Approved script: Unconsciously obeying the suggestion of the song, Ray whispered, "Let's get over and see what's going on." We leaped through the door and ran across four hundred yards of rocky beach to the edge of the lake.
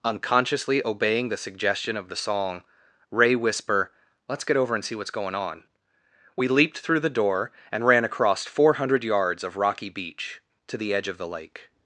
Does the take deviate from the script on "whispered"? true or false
true